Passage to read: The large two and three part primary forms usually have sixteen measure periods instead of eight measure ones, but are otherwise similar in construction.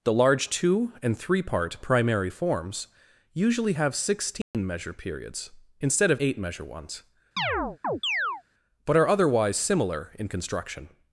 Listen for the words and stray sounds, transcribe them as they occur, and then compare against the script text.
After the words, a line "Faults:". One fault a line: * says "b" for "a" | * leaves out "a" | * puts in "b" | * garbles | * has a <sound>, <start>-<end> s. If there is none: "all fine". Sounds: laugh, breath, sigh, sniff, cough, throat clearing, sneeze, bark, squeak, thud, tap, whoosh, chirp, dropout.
The large two and three part primary forms usually have sixteen measure periods instead of eight measure ones, but are otherwise similar in construction.
Faults:
* has a dropout, 4.4-4.5 s
* has a chirp, 7.4-8.4 s